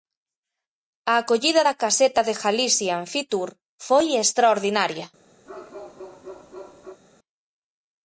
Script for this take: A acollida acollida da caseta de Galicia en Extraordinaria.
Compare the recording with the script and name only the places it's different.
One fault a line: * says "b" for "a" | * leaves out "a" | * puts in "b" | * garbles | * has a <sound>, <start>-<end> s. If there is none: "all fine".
* leaves out "acollida"
* puts in "Fitur foi"
* has a bark, 5.5-7.0 s